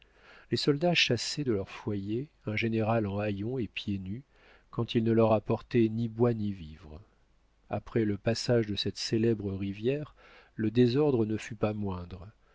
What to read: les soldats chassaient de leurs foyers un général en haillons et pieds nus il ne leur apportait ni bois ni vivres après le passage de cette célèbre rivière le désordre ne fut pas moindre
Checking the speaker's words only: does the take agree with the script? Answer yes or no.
no